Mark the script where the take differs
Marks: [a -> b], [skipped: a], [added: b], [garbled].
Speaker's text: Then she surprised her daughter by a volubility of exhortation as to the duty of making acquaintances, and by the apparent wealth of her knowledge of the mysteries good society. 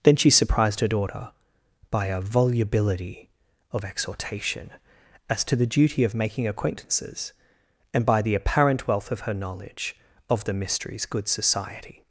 Then she surprised her daughter by a volubility of exhortation as to the duty of making acquaintances, and by the apparent wealth of her knowledge of the mysteries good society.